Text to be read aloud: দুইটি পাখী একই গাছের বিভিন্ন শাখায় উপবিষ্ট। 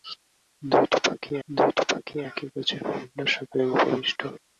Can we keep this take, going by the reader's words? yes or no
no